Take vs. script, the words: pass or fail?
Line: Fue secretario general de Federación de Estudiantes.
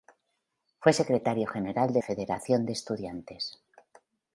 pass